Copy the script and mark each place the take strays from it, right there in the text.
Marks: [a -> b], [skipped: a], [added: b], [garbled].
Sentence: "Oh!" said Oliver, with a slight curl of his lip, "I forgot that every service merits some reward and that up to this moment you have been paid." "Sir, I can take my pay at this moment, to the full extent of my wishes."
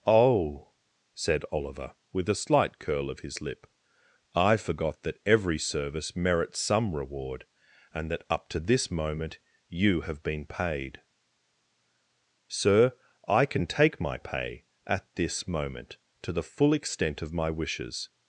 "Oh!" said Oliver, with a slight curl of his lip, "I forgot that every service merits some reward and that up to this moment you have been paid." "Sir, I can take my pay at this moment, to the full extent of my wishes."